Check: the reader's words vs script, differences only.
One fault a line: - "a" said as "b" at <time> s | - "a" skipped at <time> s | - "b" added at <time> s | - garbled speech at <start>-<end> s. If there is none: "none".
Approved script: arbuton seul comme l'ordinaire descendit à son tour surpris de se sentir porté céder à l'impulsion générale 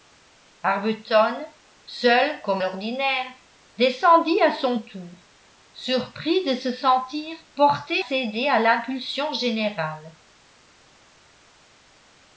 none